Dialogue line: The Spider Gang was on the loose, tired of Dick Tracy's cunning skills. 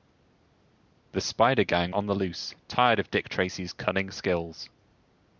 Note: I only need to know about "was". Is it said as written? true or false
false